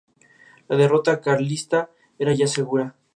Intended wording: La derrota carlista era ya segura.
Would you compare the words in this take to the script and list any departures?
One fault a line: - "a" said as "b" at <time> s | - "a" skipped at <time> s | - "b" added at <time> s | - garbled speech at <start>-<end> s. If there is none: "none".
none